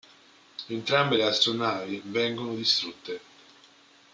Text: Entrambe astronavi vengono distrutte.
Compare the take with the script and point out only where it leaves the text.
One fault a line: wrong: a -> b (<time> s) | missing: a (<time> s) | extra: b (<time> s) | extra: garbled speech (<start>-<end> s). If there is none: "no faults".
extra: le (1.1 s)